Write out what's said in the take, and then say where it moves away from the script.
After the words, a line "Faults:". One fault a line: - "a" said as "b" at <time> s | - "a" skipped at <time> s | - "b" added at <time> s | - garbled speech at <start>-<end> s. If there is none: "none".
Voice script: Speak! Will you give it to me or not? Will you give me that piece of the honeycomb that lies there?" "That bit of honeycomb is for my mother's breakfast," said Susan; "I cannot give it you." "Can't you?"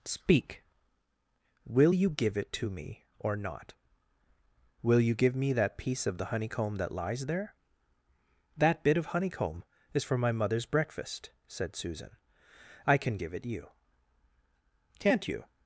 Speak! Will you give it to me or not? Will you give me that piece of the honeycomb that lies there?" "That bit of honeycomb is for my mother's breakfast," said Susan; "I can give it you." "Can't you?"
Faults:
- "cannot" said as "can" at 13.0 s